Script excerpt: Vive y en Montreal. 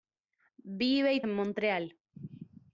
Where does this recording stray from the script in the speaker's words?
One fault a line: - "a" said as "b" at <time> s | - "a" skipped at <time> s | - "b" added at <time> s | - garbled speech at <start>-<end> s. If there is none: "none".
none